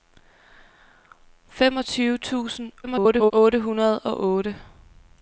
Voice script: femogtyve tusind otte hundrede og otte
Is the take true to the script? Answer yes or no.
no